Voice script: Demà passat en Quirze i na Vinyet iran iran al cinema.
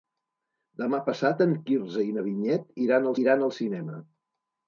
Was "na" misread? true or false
false